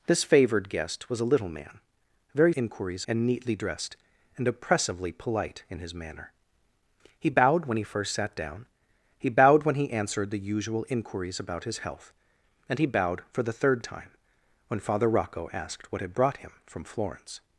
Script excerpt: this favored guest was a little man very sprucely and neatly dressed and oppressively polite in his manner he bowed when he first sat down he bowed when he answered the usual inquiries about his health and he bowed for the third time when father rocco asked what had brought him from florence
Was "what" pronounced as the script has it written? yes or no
yes